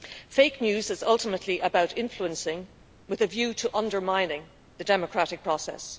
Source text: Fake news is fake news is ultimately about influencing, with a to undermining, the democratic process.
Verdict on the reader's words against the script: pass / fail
fail